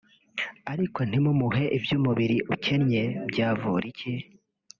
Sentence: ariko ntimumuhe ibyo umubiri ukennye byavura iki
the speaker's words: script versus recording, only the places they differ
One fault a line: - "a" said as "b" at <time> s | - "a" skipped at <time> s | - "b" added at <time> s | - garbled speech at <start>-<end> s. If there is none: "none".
none